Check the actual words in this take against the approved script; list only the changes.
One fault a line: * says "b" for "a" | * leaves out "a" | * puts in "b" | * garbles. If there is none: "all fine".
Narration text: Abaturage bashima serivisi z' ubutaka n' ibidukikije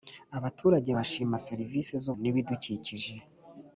* leaves out "ubutaka"